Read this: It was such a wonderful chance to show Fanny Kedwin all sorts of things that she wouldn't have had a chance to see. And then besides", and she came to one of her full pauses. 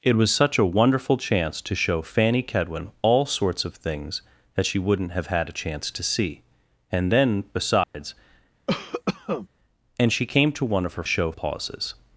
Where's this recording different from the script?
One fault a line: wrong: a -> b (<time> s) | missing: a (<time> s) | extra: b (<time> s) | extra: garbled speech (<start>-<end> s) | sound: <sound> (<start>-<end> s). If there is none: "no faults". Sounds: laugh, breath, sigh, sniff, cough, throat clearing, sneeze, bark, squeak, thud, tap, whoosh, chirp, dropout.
sound: dropout (7.8-7.9 s)
sound: cough (8.7-9.5 s)
wrong: full -> show (11.0 s)